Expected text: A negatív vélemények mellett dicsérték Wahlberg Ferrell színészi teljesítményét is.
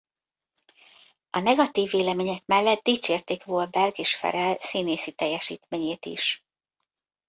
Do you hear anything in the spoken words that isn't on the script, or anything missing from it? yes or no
yes